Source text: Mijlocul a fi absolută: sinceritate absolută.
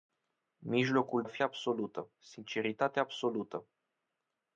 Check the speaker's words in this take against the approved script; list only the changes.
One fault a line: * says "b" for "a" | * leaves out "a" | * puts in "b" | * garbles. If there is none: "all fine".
all fine